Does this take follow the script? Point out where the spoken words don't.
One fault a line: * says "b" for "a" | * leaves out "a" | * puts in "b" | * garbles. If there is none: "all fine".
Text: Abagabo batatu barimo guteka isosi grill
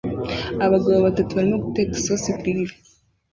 all fine